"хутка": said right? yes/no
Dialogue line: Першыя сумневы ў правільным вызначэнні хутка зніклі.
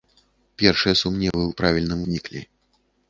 no